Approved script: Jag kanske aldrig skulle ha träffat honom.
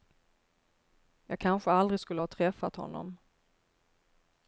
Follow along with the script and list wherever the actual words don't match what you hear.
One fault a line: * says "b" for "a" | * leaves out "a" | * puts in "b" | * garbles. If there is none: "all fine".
all fine